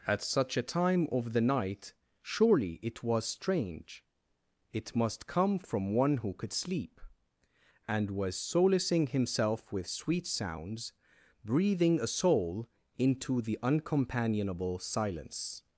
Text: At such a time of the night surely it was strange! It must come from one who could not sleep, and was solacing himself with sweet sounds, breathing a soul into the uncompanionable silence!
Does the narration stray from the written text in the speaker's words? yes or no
yes